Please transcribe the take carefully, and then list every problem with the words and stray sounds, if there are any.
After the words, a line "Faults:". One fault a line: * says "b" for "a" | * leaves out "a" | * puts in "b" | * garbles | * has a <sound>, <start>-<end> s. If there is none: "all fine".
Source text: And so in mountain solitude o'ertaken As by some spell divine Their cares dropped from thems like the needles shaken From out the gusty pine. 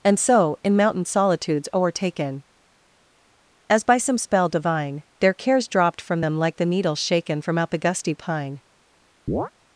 And so in mountain solitudes o'ertaken As by some spell divine Their cares dropped from them like the needles shaken From out the gusty pine.
Faults:
* says "solitudes" for "solitude"
* says "them" for "thems"
* has a chirp, 9.3-9.5 s